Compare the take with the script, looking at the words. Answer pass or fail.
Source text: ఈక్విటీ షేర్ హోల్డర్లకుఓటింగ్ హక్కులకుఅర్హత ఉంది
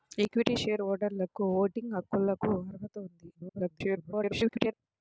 fail